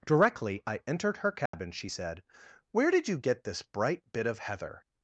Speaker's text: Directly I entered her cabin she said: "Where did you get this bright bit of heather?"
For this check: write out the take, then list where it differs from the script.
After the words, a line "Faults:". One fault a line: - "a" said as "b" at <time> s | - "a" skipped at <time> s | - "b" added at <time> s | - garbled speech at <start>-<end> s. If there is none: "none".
Directly I entered her cabin she said: "Where did you get this bright bit of heather?"
Faults:
none